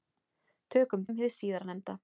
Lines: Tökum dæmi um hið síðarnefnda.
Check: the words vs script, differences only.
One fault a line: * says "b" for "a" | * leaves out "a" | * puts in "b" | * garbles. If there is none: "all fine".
* leaves out "dæmi"